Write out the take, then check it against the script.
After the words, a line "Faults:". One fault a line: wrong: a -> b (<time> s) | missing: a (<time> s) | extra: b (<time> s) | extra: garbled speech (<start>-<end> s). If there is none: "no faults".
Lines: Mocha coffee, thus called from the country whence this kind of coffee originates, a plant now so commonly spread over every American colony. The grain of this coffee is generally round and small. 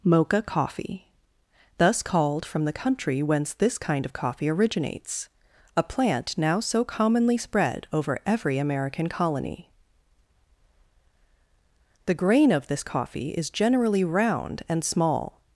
Mocha coffee, thus called from the country whence this kind of coffee originates, a plant now so commonly spread over every American colony. The grain of this coffee is generally round and small.
Faults:
no faults